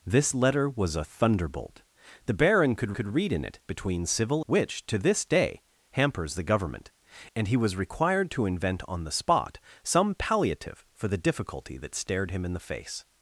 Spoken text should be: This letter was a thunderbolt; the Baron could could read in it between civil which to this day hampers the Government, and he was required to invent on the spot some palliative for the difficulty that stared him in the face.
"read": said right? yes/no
yes